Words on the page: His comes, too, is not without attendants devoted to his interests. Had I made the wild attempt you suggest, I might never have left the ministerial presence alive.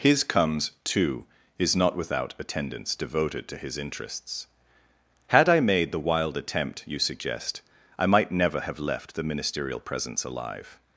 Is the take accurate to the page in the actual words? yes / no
yes